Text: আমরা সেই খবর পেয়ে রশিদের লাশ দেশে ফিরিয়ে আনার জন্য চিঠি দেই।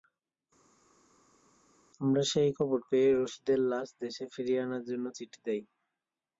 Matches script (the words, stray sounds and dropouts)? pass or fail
pass